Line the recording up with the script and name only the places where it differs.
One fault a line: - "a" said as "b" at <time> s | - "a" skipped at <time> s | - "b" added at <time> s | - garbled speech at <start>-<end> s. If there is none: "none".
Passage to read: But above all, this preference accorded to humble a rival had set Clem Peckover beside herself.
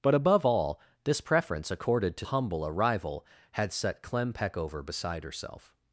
none